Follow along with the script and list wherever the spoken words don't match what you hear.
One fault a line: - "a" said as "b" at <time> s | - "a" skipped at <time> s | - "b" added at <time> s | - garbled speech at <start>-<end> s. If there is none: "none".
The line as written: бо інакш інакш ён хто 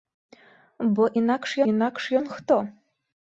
none